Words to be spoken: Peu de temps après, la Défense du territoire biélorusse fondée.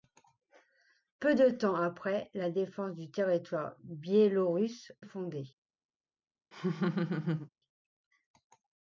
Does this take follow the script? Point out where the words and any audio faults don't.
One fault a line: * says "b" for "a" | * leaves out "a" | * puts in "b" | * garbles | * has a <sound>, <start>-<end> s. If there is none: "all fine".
* has a laugh, 6.5-7.5 s